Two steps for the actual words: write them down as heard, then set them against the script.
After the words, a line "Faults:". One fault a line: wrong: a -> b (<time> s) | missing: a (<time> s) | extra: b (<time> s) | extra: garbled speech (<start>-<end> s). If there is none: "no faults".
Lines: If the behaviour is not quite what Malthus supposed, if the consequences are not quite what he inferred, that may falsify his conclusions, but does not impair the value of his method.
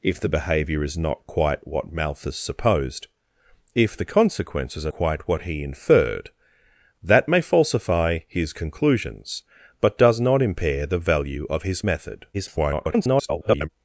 If the behaviour is not quite what Malthus supposed, if the consequences are quite what he inferred, that may falsify his conclusions, but does not impair the value of his method. [garbled]
Faults:
missing: not (4.9 s)
extra: garbled speech (12.3-13.7 s)